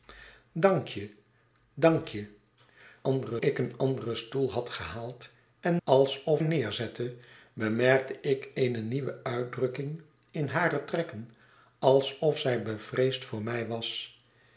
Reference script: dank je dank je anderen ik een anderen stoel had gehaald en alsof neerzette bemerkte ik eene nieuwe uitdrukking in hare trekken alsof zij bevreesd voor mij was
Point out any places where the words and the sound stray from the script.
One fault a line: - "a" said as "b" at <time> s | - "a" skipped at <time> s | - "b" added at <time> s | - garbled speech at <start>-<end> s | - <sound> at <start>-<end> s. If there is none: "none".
none